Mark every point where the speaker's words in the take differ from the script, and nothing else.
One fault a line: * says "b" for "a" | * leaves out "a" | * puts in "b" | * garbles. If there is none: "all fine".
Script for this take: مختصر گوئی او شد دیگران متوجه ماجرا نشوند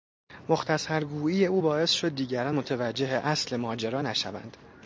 * puts in "باعث"
* puts in "اصل"